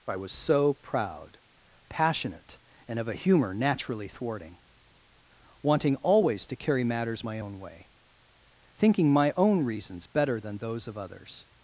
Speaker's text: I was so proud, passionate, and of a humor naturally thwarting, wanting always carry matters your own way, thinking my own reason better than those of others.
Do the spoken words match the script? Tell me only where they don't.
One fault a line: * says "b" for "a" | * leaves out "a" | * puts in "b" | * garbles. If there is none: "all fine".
* puts in "to"
* says "my" for "your"
* says "reasons" for "reason"